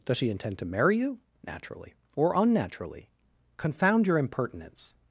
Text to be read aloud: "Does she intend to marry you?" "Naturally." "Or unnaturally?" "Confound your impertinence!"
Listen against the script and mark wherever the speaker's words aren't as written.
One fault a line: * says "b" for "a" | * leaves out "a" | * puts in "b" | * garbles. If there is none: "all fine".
all fine